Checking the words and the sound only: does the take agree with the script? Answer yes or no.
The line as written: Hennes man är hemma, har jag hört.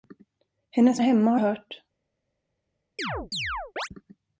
no